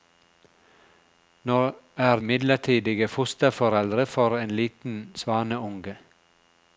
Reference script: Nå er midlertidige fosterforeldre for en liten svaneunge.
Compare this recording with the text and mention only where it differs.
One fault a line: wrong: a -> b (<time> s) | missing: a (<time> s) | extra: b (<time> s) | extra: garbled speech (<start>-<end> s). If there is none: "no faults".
no faults